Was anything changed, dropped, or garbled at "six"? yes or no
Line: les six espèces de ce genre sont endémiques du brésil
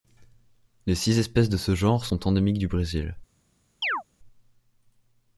no